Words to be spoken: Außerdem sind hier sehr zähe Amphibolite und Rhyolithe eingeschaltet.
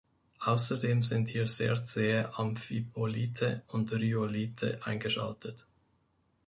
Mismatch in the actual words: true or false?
false